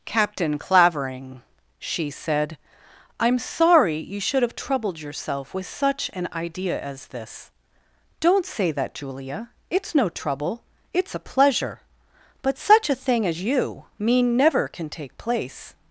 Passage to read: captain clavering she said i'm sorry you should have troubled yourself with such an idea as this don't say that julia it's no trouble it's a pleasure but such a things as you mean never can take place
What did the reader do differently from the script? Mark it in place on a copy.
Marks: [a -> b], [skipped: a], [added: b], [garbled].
captain clavering she said i'm sorry you should have troubled yourself with such an idea as this don't say that julia it's no trouble it's a pleasure but such a [things -> thing] as you mean never can take place